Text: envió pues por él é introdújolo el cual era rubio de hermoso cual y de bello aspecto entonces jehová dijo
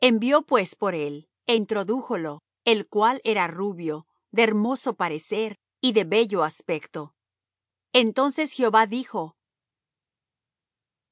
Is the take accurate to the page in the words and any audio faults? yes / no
no